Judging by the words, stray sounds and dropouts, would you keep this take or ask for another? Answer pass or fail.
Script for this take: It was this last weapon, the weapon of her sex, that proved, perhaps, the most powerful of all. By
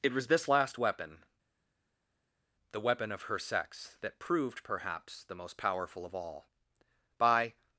pass